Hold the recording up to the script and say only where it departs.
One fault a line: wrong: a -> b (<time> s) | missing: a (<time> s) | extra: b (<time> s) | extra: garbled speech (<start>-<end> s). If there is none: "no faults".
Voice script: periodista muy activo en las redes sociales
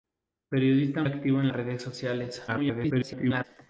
missing: muy (1.0 s)
missing: las (1.5 s)
extra: garbled speech (2.5-3.4 s)